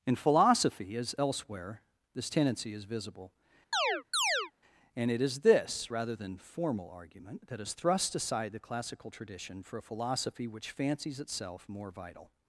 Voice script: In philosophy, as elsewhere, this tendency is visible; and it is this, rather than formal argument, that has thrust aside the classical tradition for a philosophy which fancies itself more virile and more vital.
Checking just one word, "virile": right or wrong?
wrong